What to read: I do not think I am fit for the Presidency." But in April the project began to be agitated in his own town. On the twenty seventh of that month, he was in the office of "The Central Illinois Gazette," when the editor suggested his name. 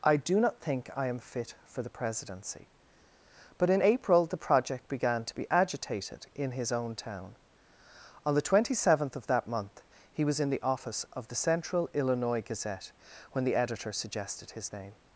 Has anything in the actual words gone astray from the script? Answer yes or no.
no